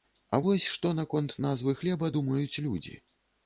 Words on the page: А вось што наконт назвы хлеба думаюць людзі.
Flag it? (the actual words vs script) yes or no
no